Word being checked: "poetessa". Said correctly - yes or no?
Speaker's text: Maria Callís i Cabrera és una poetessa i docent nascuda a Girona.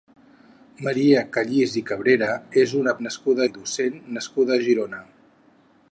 no